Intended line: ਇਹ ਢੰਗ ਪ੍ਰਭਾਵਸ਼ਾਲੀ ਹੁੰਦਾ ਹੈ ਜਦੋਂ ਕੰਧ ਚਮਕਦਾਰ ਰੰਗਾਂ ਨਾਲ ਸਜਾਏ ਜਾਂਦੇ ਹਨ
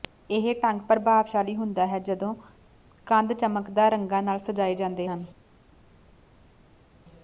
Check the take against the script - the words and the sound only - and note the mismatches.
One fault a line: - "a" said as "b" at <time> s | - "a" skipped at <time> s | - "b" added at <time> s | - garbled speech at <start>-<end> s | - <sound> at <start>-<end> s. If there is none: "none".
none